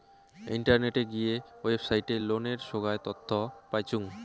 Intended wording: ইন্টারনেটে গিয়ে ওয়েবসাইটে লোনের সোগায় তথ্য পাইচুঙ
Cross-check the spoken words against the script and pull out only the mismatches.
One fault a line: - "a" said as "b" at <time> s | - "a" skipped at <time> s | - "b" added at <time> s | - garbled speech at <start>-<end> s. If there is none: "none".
none